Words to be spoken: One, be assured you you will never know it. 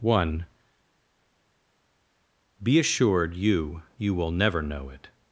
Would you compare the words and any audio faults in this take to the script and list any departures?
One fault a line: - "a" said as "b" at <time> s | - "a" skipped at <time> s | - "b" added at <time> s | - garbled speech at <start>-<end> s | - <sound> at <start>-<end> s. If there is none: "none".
none